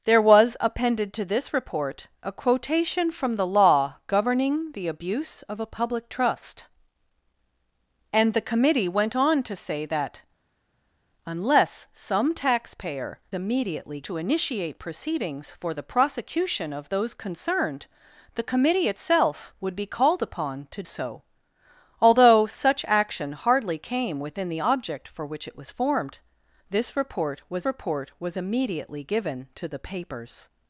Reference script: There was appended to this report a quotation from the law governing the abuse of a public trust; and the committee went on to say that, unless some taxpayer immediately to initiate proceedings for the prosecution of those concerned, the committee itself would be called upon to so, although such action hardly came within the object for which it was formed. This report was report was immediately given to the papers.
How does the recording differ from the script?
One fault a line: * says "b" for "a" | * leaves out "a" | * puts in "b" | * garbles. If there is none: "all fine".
all fine